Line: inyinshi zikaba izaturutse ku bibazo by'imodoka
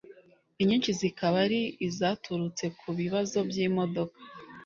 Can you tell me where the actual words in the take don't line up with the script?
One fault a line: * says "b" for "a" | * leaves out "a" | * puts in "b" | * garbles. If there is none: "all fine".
* puts in "ari"